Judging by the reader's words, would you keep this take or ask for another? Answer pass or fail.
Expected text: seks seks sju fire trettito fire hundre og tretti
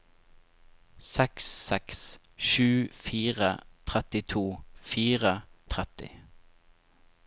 fail